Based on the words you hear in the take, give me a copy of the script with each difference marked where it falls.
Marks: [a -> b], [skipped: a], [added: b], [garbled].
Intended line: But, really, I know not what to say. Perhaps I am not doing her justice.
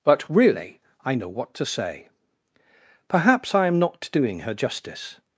But, really, I know [skipped: not] what to say. Perhaps I am not doing her justice.